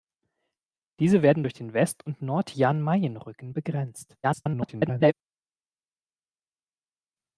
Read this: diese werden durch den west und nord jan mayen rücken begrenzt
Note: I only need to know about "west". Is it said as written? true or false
true